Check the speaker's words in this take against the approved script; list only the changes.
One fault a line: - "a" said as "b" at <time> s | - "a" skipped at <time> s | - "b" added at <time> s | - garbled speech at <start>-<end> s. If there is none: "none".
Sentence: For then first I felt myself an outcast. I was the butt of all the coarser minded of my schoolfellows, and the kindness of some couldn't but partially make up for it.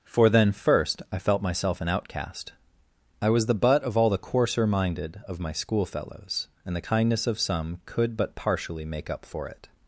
- "couldn't" said as "could" at 7.8 s